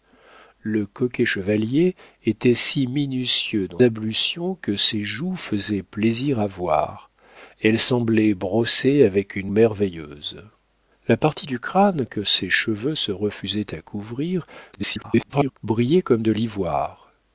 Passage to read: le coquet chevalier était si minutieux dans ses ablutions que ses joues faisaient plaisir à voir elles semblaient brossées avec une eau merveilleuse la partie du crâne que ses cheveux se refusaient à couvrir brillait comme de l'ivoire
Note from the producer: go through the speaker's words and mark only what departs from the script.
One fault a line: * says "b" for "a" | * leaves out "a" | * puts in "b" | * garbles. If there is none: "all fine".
* leaves out "ses"
* leaves out "eau"
* garbles